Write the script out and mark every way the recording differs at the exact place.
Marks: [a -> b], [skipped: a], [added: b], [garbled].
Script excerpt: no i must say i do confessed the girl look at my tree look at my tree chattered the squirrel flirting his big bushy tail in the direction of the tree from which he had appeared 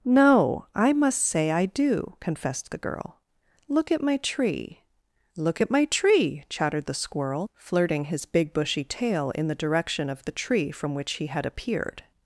no i must say i do confessed the girl look at my tree look at my tree chattered the squirrel flirting his big bushy tail in the direction of the tree from which he had appeared